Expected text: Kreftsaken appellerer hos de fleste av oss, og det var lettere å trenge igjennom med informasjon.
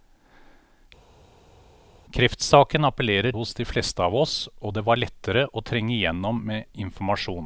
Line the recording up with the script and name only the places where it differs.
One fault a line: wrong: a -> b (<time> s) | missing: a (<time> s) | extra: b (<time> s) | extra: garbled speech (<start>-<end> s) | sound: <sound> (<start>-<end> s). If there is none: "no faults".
no faults